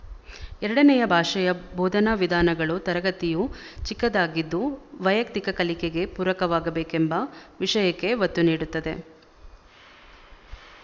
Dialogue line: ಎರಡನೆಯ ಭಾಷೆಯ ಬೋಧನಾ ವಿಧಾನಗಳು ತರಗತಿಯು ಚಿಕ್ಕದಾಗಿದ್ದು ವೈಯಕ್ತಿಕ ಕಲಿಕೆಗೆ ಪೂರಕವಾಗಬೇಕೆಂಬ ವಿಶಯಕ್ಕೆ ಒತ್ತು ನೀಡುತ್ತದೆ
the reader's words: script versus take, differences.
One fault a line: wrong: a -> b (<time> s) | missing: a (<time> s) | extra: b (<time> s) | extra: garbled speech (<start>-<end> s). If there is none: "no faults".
no faults